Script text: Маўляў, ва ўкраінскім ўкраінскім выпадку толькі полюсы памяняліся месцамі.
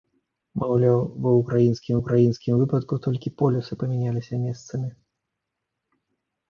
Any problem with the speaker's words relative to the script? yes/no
no